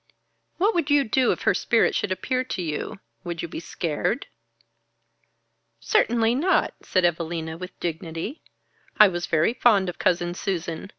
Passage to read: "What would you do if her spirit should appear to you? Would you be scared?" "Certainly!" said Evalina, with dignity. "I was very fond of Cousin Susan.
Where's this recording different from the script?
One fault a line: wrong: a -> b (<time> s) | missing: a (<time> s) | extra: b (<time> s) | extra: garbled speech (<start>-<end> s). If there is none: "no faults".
extra: not (6.3 s)